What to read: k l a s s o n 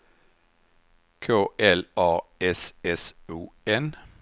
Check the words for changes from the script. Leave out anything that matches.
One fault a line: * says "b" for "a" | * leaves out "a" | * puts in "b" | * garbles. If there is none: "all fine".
all fine